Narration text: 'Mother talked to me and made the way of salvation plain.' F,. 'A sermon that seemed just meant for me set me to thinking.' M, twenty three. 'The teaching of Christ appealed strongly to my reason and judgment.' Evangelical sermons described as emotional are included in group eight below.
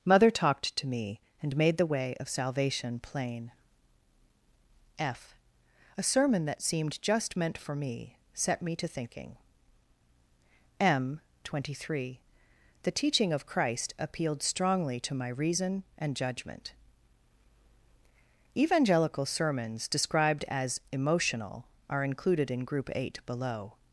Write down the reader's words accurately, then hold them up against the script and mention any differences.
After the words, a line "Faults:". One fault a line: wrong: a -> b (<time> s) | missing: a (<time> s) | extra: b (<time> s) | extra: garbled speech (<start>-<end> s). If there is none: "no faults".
'Mother talked to me and made the way of salvation plain.' F,. 'A sermon that seemed just meant for me set me to thinking.' M, twenty three. 'The teaching of Christ appealed strongly to my reason and judgment.' Evangelical sermons described as emotional are included in group eight below.
Faults:
no faults